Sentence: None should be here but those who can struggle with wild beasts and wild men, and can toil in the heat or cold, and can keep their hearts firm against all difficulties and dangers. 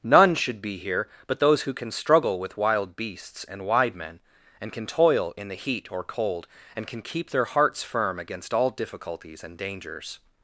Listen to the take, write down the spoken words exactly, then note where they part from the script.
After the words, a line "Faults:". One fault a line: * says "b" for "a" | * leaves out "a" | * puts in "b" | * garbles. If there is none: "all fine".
None should be here but those who can struggle with wild beasts and wide men, and can toil in the heat or cold, and can keep their hearts firm against all difficulties and dangers.
Faults:
* says "wide" for "wild"